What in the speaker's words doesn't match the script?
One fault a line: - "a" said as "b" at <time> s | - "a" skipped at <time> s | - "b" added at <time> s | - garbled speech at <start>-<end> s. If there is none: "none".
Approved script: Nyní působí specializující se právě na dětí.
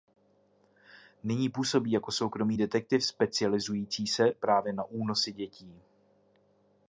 - "jako soukromý detektiv" added at 1.9 s
- "únosy" added at 4.8 s